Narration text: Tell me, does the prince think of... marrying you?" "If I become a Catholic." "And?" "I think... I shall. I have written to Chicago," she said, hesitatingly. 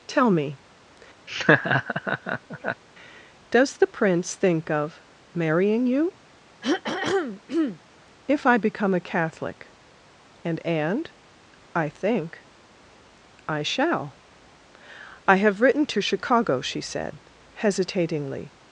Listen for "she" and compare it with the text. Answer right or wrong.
right